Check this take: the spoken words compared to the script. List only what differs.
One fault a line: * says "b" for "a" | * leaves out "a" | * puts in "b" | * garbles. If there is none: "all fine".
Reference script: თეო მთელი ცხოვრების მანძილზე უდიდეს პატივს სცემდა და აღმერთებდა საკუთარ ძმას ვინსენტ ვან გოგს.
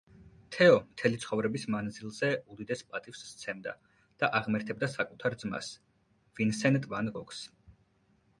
all fine